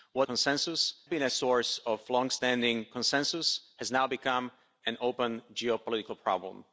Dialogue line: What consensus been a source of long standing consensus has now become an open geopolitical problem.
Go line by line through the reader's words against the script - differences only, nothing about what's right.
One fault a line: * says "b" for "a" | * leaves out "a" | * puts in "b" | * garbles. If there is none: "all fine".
all fine